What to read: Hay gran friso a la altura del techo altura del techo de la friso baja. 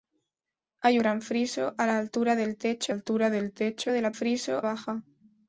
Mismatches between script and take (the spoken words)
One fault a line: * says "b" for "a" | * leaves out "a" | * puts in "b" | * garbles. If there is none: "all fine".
all fine